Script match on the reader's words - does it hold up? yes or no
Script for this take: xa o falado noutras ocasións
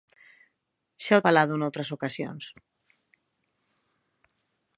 yes